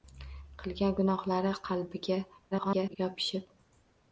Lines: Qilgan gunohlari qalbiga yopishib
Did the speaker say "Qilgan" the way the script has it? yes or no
yes